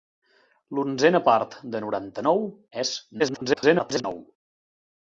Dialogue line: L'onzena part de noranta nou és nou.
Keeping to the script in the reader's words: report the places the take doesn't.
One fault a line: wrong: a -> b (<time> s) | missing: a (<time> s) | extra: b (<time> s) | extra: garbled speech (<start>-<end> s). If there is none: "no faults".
extra: garbled speech (3.2-4.0 s)